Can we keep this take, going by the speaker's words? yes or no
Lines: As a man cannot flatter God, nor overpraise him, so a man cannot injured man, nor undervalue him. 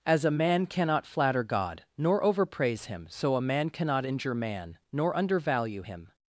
no